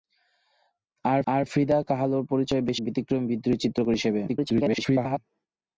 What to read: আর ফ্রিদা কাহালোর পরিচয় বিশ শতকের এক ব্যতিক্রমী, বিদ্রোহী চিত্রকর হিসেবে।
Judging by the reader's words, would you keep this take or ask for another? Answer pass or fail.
fail